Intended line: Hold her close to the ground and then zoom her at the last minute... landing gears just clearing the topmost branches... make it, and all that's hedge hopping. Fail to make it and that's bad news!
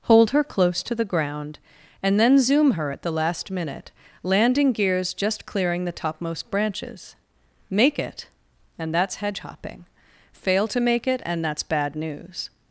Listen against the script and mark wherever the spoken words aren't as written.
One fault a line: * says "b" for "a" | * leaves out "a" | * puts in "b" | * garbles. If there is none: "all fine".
* leaves out "all"